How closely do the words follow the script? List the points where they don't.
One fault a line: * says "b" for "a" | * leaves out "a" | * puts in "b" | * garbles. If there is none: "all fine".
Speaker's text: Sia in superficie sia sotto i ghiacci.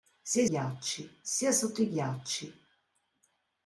* says "ghiacci" for "superficie"